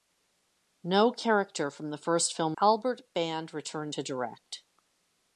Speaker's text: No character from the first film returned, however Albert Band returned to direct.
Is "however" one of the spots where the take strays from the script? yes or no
yes